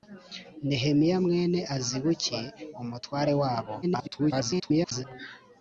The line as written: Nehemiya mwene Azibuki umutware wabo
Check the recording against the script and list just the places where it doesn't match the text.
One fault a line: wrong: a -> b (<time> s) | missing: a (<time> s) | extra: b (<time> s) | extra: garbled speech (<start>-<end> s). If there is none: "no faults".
extra: garbled speech (3.8-5.0 s)